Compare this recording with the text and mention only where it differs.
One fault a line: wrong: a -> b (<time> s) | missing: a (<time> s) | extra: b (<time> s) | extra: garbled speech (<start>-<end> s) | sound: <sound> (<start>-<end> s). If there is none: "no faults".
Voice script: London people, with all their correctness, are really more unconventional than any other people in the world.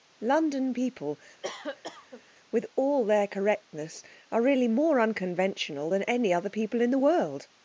sound: cough (1.4-2.2 s)